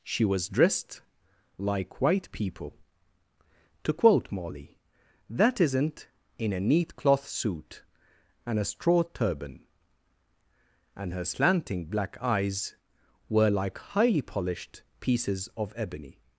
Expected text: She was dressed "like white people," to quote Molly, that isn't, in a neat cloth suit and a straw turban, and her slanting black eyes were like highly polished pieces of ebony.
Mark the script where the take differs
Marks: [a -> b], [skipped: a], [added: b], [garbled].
She was dressed "like white people," to quote Molly, that isn't, in a neat cloth suit and a straw turban, and her slanting black eyes were like highly polished pieces of ebony.